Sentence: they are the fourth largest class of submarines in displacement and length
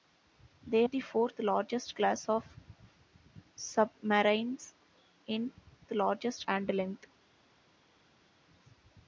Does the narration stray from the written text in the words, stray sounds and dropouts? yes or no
yes